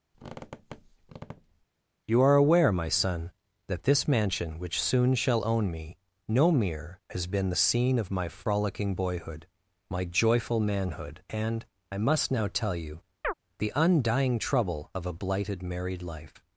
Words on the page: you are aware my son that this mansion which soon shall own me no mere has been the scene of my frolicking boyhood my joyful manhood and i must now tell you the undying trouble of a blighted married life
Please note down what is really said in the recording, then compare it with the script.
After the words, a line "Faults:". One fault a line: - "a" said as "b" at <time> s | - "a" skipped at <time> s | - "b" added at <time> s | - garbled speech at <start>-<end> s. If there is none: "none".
you are aware my son that this mansion which soon shall own me no mere has been the scene of my frolicking boyhood my joyful manhood and i must now tell you the undying trouble of a blighted married life
Faults:
none